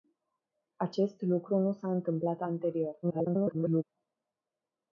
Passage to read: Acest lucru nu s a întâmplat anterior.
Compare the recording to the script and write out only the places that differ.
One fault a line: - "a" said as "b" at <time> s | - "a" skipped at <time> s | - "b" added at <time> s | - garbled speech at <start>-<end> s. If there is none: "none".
- garbled speech at 3.0-3.8 s